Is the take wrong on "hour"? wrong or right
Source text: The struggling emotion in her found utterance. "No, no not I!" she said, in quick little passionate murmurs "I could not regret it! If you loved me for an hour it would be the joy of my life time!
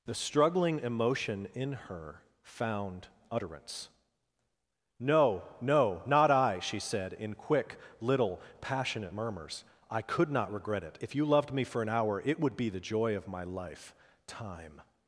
right